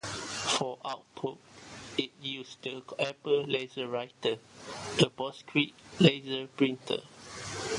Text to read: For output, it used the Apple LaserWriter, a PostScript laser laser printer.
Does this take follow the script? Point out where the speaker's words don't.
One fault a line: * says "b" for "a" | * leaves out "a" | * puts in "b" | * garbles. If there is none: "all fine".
* leaves out "laser"